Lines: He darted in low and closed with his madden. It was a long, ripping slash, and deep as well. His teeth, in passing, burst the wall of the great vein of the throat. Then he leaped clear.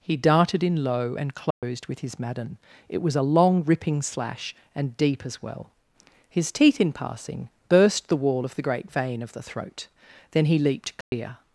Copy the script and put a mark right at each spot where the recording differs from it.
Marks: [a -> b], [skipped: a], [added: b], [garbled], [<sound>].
He darted in low and closed [dropout] with his madden. It was a long, ripping slash, and deep as well. His teeth, in passing, burst the wall of the great vein of the throat. Then he leaped clear. [dropout]